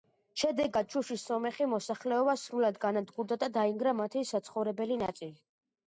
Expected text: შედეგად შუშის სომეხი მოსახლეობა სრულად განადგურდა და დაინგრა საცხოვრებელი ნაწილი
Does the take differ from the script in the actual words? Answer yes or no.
yes